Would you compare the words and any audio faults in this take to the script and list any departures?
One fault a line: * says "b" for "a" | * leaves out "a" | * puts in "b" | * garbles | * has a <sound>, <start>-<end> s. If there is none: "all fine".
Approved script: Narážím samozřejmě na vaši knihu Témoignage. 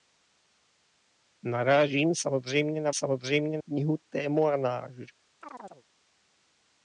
* says "samozřejmě" for "vaši"
* has a chirp, 5.4-5.8 s